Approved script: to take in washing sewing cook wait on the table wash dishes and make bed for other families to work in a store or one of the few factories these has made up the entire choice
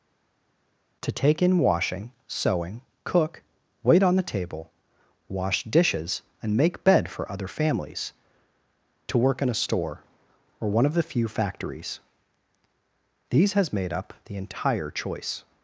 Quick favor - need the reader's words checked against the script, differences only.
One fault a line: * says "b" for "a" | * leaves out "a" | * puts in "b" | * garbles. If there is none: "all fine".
all fine